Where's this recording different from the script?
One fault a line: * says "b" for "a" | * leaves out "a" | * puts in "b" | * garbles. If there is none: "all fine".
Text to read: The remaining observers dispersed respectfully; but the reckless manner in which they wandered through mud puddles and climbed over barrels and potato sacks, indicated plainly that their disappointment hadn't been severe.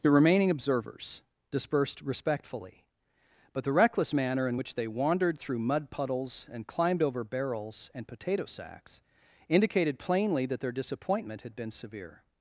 * says "had" for "hadn't"